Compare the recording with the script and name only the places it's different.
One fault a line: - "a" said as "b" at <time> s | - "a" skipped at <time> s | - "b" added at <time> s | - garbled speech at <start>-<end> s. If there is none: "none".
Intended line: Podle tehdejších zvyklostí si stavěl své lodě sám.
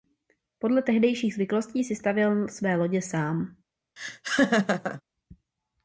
none